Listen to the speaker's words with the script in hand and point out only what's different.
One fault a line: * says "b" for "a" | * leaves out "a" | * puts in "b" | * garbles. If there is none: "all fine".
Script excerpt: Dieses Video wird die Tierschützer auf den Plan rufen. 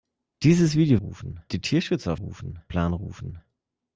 * says "rufen" for "wird"
* says "rufen" for "den"